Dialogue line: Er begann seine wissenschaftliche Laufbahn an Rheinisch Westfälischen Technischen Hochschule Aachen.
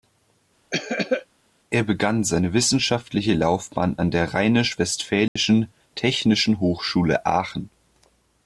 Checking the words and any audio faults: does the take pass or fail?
fail